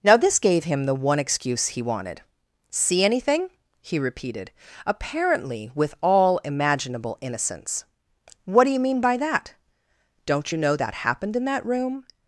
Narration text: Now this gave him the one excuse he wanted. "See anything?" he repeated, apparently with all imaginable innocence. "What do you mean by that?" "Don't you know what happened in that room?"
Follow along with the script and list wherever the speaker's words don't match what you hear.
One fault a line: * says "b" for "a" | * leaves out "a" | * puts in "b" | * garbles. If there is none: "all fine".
* says "that" for "what"